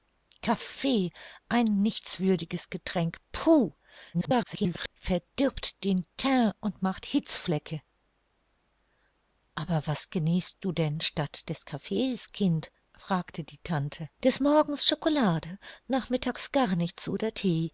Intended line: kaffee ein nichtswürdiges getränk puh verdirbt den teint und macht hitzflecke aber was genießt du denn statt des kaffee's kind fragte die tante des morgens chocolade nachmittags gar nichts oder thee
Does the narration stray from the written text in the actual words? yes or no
yes